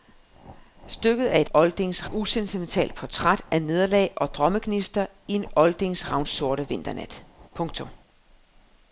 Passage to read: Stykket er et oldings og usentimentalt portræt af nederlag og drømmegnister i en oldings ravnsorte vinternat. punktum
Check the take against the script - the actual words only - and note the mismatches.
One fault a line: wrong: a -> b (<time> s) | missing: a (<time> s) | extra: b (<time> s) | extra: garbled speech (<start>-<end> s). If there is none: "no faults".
no faults